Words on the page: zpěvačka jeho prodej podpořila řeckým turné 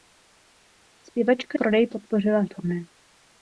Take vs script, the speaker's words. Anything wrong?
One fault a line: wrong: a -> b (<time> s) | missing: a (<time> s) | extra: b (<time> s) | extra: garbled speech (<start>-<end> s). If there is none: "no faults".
missing: jeho (1.6 s)
missing: řeckým (2.4 s)